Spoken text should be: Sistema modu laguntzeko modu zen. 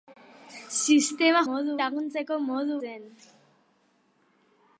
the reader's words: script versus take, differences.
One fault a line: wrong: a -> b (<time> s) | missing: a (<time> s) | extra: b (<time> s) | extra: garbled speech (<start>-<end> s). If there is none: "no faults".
no faults